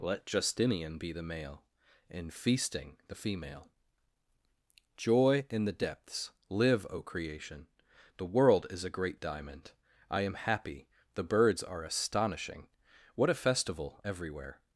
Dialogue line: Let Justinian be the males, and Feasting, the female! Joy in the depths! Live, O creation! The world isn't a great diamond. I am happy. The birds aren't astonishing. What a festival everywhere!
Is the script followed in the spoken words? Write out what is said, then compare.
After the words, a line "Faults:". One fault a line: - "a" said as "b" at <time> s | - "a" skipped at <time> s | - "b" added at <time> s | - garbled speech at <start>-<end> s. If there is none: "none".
Let Justinian be the male, and Feasting, the female! Joy in the depths! Live, O creation! The world is a great diamond. I am happy. The birds are astonishing. What a festival everywhere!
Faults:
- "males" said as "male" at 1.2 s
- "isn't" said as "is" at 8.7 s
- "aren't" said as "are" at 11.6 s